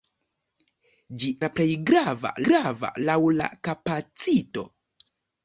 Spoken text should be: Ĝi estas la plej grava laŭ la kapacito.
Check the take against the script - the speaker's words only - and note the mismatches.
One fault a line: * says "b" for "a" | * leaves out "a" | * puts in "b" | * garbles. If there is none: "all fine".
* leaves out "estas"
* puts in "grava"